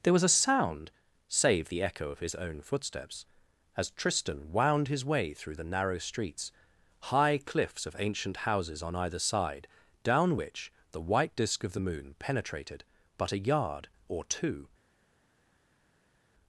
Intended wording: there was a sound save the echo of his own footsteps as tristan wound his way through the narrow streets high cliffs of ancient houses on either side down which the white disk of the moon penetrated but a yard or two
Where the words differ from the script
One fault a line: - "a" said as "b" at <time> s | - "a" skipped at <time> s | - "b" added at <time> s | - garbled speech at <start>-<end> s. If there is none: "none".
none